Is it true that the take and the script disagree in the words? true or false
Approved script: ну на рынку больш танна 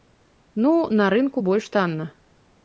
false